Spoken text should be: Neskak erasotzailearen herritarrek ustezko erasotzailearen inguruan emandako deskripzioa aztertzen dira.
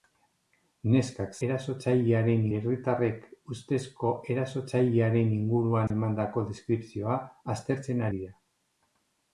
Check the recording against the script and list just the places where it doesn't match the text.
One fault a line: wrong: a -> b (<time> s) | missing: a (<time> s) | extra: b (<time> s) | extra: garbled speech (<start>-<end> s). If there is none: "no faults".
no faults